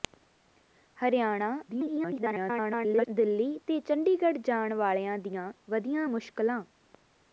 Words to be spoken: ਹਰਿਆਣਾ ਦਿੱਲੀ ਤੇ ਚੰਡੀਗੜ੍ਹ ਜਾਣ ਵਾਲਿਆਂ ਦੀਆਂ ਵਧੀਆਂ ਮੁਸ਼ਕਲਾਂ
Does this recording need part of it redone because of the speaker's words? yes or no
yes